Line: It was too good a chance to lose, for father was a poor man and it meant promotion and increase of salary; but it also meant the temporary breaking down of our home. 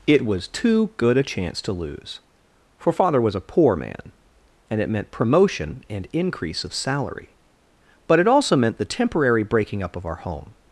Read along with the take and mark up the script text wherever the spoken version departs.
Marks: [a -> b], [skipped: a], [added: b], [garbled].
It was too good a chance to lose, for father was a poor man and it meant promotion and increase of salary; but it also meant the temporary breaking [down -> up] of our home.